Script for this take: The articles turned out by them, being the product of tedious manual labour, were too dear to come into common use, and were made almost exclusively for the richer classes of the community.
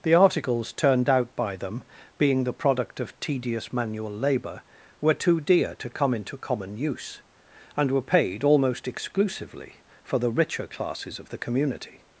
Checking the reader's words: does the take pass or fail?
fail